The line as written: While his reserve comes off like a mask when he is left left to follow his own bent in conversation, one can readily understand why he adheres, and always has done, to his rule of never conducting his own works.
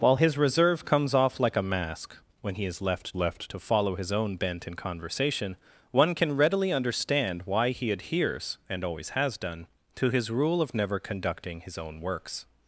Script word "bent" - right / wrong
right